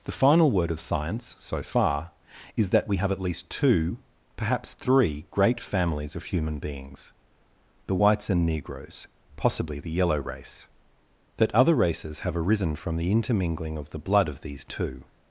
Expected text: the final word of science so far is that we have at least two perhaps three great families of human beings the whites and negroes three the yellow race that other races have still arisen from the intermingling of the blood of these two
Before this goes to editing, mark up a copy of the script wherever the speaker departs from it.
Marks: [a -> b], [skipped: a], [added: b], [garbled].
the final word of science so far is that we have at least two perhaps three great families of human beings the whites and negroes [three -> possibly] the yellow race that other races have [skipped: still] arisen from the intermingling of the blood of these two